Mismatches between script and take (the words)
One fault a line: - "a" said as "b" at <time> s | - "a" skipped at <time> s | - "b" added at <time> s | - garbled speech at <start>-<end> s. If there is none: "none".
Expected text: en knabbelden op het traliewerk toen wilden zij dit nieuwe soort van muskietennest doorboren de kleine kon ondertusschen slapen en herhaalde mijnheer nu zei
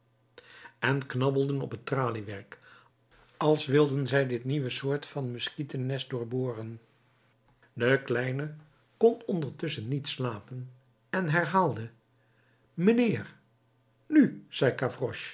- "toen" said as "als" at 3.4 s
- "niet" added at 9.9 s